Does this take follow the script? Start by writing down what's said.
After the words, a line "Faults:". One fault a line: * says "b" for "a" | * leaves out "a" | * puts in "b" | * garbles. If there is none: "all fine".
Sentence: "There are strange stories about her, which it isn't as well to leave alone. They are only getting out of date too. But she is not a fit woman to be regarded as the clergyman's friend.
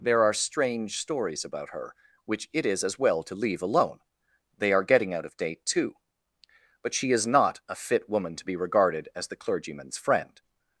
"There are strange stories about her, which it is as well to leave alone. They are getting out of date too. But she is not a fit woman to be regarded as the clergyman's friend.
Faults:
* says "is" for "isn't"
* leaves out "only"